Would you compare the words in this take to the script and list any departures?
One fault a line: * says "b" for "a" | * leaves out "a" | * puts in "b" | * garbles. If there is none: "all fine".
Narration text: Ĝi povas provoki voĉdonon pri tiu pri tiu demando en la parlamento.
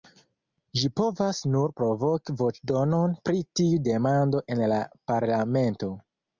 * puts in "nur"
* leaves out "pri tiu"